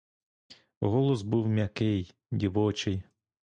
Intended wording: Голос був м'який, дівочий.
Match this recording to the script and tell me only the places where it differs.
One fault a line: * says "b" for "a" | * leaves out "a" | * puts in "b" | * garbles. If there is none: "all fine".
all fine